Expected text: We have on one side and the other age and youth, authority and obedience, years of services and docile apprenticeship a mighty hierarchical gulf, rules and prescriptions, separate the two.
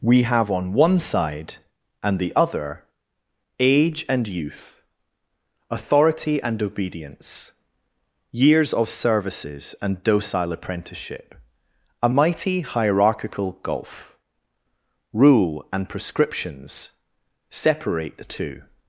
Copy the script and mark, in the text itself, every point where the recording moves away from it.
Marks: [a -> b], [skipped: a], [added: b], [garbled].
We have on one side and the other age and youth, authority and obedience, years of services and docile apprenticeship a mighty hierarchical gulf, [rules -> rule] and prescriptions, separate the two.